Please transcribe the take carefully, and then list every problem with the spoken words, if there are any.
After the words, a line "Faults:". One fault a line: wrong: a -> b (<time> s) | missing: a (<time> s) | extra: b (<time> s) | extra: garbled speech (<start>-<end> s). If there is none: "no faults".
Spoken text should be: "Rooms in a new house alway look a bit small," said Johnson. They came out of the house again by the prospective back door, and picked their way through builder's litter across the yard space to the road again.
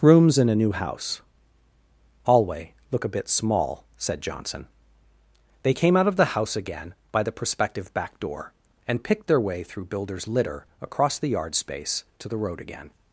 "Rooms in a new house alway look a bit small," said Johnson. They came out of the house again by the prospective back door, and picked their way through builder's litter across the yard space to the road again.
Faults:
no faults